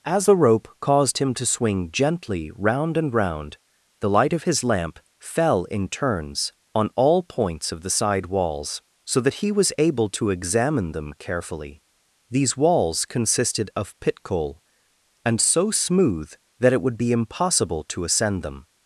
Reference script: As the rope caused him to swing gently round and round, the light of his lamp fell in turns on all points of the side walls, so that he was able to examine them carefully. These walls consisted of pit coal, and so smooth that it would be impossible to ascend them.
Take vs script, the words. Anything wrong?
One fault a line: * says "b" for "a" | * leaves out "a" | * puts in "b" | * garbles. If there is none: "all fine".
all fine